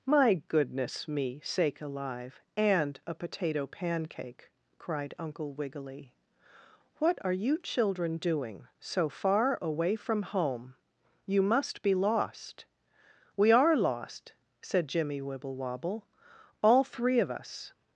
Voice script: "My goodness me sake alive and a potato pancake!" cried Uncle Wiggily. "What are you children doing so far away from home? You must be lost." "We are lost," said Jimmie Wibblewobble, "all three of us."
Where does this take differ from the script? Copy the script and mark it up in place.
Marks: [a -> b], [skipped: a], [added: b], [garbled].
"My goodness me sake alive and a potato pancake!" cried Uncle Wiggily. "What are you children doing so far away from home? You must be lost." "We are lost," said Jimmie Wibblewobble, "all three of us."